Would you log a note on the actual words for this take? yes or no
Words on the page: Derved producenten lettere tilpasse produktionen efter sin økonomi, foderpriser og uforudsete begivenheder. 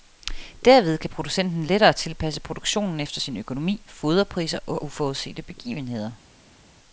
yes